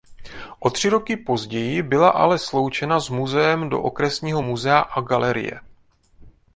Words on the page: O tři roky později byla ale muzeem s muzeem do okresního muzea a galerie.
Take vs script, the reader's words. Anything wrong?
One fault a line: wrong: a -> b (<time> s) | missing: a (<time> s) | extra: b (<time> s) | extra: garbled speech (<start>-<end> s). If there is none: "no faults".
wrong: muzeem -> sloučena (2.4 s)